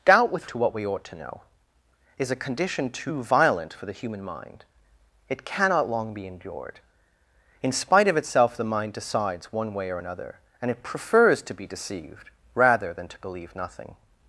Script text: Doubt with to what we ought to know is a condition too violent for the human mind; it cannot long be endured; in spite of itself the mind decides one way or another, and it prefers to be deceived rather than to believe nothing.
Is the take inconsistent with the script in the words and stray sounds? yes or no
no